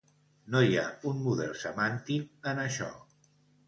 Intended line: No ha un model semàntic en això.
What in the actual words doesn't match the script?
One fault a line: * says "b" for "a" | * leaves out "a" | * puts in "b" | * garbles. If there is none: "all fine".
* puts in "hi"